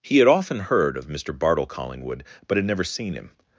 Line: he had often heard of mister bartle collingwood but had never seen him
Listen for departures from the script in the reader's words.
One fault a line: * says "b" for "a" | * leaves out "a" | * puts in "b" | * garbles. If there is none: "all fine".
all fine